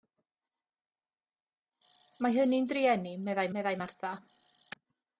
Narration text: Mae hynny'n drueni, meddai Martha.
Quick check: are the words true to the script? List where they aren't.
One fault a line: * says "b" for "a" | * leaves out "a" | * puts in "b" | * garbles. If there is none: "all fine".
* puts in "meddai"